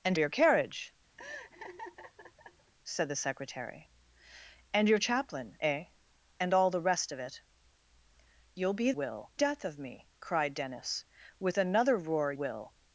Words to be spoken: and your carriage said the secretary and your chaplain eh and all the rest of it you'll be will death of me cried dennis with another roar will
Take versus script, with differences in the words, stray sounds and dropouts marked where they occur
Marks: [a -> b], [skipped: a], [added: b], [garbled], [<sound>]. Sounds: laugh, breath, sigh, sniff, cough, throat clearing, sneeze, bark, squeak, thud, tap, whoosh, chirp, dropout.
and your carriage [laugh] said the secretary and your chaplain eh and all the rest of it you'll be will death of me cried dennis with another roar will